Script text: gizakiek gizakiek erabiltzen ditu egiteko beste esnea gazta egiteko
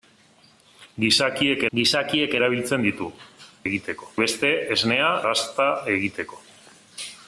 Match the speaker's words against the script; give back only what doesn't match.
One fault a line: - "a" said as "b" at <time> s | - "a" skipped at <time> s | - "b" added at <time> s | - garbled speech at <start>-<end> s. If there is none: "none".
none